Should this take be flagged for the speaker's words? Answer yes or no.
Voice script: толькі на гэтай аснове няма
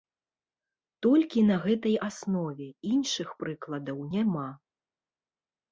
yes